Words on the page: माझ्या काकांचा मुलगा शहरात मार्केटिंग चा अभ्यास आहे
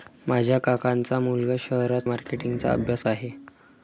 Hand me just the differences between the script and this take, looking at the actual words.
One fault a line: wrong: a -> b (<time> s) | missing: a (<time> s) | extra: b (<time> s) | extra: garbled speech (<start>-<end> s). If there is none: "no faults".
no faults